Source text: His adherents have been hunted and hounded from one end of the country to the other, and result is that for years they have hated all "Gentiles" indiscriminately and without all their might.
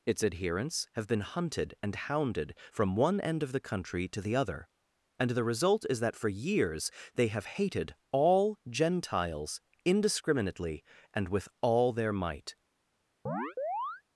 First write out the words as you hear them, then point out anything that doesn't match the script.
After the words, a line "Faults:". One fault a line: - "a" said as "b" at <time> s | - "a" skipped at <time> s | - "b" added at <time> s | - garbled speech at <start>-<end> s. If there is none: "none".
Its adherents have been hunted and hounded from one end of the country to the other, and the result is that for years they have hated all "Gentiles" indiscriminately and with all their might.
Faults:
- "His" said as "Its" at 0.1 s
- "the" added at 5.3 s
- "without" said as "with" at 11.3 s